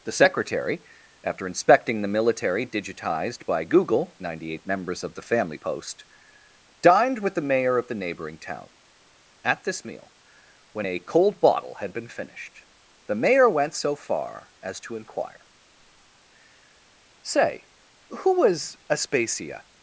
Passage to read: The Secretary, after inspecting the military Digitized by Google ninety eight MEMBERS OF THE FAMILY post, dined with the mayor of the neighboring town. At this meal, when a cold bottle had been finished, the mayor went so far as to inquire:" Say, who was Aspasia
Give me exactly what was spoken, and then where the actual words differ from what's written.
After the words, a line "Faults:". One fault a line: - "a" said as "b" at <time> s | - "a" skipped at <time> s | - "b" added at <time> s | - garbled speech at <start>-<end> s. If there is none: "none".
The Secretary, after inspecting the military Digitized by Google ninety eight MEMBERS OF THE FAMILY post, dined with the mayor of the neighboring town. At this meal, when a cold bottle had been finished, the mayor went so far as to inquire:" Say, who was Aspasia
Faults:
none